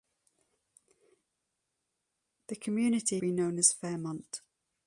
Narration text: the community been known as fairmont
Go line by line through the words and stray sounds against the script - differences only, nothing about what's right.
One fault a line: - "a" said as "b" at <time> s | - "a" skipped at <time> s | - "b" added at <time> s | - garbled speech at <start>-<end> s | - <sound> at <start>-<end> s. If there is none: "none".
none